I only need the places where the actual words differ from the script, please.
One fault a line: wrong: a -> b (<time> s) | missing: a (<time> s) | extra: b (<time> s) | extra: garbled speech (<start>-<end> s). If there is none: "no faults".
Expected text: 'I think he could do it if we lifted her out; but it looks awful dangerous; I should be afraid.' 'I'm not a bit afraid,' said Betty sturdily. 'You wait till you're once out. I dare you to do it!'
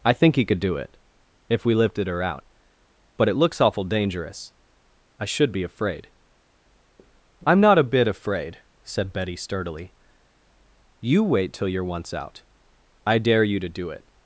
no faults